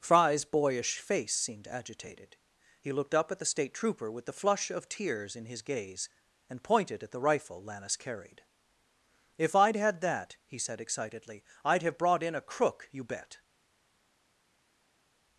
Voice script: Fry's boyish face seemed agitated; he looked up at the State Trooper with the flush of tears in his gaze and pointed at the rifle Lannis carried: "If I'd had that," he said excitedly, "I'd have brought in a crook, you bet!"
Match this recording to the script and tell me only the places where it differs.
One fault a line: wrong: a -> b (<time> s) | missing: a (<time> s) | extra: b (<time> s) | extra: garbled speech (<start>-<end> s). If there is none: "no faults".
no faults